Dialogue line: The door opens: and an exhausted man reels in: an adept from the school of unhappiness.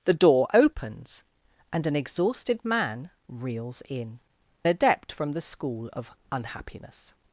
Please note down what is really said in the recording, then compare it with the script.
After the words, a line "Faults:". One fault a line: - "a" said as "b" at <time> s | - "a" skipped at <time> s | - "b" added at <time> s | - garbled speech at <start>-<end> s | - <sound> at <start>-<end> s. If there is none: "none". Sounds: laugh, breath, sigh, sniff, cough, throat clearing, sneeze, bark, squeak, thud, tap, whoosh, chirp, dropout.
The door opens: and an exhausted man reels in: adept from the school of unhappiness.
Faults:
- "an" skipped at 4.2 s